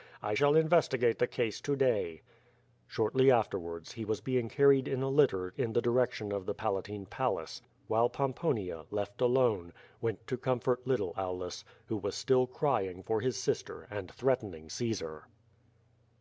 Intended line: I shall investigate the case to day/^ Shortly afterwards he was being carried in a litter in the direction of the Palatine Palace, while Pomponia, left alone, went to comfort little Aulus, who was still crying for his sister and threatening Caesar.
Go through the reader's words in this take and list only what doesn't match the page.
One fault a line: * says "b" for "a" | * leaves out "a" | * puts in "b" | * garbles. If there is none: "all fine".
all fine